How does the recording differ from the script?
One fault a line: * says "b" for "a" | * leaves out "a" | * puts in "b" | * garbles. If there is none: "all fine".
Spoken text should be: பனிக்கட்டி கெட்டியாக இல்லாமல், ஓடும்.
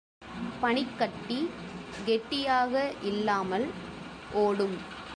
all fine